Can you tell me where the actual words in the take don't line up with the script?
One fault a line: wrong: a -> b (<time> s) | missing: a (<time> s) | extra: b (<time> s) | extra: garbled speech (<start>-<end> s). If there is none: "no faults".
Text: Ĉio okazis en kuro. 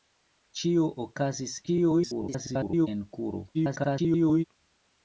extra: garbled speech (1.7-2.9 s)
extra: garbled speech (3.5-4.4 s)